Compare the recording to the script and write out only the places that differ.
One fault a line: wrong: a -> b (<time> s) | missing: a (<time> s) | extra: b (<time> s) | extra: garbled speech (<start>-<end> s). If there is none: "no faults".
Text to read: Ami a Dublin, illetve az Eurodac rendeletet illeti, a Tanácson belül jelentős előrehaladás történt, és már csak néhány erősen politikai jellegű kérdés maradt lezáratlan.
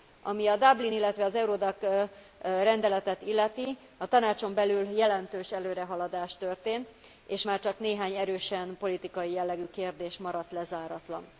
no faults